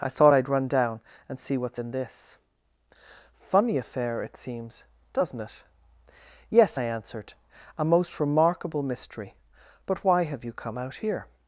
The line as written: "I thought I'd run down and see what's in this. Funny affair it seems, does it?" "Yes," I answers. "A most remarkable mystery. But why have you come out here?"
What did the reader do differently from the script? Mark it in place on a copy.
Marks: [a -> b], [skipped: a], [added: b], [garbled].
"I thought I'd run down and see what's in this. Funny affair it seems, [does -> doesn't] it?" "Yes," I [answers. -> answered] "A most remarkable mystery. But why have you come out here?"